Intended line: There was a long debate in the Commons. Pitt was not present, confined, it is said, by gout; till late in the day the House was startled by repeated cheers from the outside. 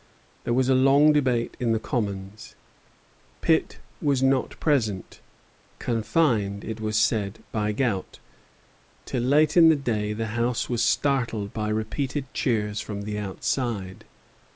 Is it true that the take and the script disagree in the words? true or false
true